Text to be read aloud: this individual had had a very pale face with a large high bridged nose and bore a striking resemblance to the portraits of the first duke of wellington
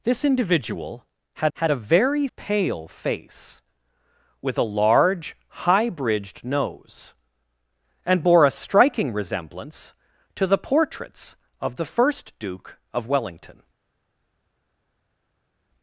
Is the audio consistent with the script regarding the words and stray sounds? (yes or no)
yes